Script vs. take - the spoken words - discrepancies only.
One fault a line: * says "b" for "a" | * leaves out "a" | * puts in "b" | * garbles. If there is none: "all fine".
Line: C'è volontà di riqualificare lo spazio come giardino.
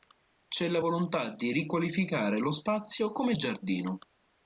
* puts in "la"